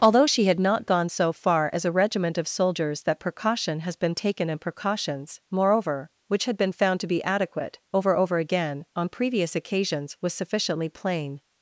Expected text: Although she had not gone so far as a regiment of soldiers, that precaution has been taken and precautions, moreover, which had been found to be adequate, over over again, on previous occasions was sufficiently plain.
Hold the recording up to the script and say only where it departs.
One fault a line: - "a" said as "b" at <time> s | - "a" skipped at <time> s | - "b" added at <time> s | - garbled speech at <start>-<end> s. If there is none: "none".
none